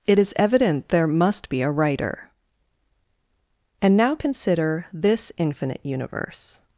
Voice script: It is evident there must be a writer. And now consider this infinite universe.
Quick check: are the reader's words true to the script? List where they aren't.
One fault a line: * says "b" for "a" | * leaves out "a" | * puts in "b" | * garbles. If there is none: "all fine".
all fine